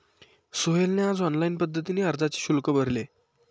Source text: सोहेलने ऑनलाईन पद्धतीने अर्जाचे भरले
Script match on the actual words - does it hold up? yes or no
no